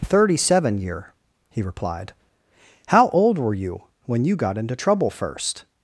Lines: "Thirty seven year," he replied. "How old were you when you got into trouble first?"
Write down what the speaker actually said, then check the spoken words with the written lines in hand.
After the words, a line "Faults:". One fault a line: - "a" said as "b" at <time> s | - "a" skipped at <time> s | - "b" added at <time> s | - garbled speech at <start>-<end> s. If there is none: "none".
"Thirty seven year," he replied. "How old were you when you got into trouble first?"
Faults:
none